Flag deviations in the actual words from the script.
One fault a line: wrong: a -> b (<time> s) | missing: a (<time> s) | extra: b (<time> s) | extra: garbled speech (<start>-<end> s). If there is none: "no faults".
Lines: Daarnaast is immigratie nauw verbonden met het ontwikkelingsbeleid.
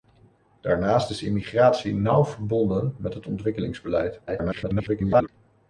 extra: garbled speech (4.3-5.3 s)